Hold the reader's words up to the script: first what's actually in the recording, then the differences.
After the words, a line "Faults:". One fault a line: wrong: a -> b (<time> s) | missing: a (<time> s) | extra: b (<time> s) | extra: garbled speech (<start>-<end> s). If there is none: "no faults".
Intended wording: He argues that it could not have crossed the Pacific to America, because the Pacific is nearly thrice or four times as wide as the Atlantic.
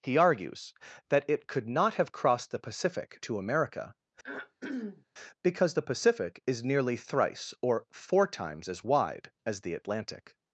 He argues that it could not have crossed the Pacific to America, because the Pacific is nearly thrice or four times as wide as the Atlantic.
Faults:
no faults